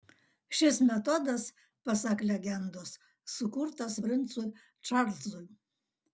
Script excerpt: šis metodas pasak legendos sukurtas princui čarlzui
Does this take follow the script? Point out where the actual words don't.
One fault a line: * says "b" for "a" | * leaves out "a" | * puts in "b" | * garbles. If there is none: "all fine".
all fine